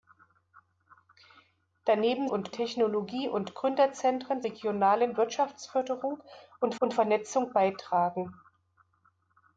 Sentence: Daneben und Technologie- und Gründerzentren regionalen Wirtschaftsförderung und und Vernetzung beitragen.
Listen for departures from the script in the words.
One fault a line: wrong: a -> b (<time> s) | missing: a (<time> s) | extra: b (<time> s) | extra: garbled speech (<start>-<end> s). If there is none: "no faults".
no faults